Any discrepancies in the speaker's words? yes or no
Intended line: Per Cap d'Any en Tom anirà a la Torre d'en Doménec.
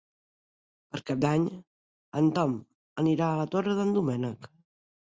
no